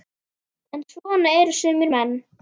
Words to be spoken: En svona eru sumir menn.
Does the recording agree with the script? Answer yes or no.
yes